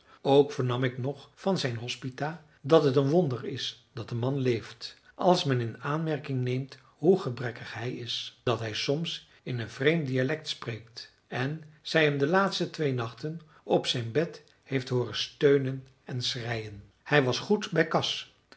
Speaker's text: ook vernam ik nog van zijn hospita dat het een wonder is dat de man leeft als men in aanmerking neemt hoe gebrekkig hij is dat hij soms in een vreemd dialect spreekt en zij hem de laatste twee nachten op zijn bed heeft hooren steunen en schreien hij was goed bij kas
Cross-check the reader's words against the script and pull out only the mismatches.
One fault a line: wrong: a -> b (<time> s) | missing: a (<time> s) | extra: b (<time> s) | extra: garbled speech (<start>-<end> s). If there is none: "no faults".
no faults